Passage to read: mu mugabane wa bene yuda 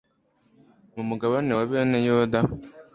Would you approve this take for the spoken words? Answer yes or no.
yes